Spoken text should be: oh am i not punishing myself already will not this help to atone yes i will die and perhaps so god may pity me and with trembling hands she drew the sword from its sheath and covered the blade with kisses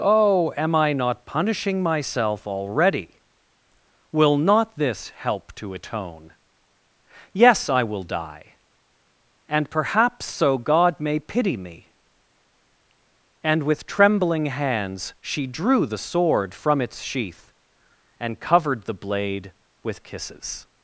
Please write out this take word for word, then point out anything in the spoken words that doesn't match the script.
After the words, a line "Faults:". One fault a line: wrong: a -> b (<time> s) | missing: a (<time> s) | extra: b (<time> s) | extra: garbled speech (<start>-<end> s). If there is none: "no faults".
oh am i not punishing myself already will not this help to atone yes i will die and perhaps so god may pity me and with trembling hands she drew the sword from its sheath and covered the blade with kisses
Faults:
no faults